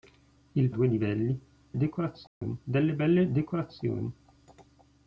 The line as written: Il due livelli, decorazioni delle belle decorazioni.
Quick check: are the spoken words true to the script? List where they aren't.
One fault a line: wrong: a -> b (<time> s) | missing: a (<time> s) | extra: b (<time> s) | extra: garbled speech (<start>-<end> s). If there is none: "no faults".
no faults